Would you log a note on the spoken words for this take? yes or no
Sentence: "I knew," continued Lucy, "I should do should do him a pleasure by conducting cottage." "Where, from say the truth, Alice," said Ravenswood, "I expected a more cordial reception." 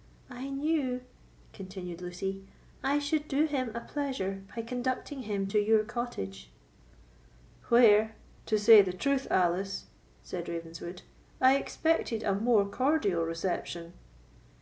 yes